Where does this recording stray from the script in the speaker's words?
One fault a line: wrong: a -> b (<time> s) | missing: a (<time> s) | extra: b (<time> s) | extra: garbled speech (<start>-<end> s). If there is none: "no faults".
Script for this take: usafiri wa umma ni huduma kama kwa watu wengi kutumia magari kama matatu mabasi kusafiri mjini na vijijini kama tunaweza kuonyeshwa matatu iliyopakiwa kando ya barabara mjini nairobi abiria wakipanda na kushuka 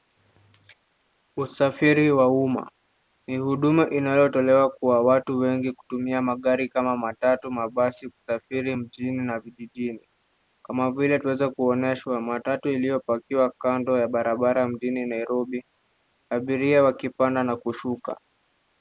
wrong: kama -> inayotolewa (3.9 s)
extra: vile (10.9 s)